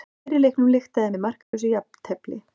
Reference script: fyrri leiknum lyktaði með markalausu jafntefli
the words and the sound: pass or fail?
fail